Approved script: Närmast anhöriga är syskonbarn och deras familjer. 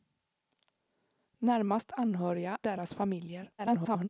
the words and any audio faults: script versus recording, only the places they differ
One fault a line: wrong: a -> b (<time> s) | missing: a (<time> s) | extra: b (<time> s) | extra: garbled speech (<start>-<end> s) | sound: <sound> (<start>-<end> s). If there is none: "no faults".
missing: är syskonbarn och (2.6 s)
extra: garbled speech (3.6-4.1 s)